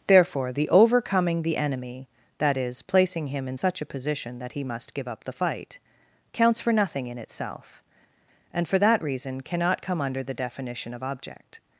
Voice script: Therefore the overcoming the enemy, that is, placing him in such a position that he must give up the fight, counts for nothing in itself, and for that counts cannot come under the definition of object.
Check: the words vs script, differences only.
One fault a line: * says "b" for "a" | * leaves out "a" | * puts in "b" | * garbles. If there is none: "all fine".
* says "reason" for "counts"